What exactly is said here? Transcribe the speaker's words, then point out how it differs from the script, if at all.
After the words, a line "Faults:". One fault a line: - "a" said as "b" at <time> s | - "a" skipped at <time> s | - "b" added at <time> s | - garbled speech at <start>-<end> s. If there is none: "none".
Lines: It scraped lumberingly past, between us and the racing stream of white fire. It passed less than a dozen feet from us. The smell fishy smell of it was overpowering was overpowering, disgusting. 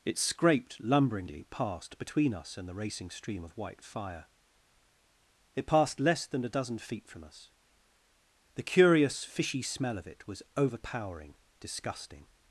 It scraped lumberingly past, between us and the racing stream of white fire. It passed less than a dozen feet from us. The curious fishy smell of it was overpowering, disgusting.
Faults:
- "smell" said as "curious" at 8.6 s
- "was overpowering" skipped at 11.3 s